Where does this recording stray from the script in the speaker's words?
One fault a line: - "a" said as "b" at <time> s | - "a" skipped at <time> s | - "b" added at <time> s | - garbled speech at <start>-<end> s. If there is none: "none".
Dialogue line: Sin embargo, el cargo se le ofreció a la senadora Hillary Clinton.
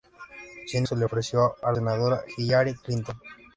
- "embargo el cargo" skipped at 0.9 s
- "la" skipped at 1.7 s